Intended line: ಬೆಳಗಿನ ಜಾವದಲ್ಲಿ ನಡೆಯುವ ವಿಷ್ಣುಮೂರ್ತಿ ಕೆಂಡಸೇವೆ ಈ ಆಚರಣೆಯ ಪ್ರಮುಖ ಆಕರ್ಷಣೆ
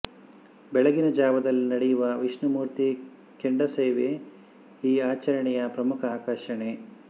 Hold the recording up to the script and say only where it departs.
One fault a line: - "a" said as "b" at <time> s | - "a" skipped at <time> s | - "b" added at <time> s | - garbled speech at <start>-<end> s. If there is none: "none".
none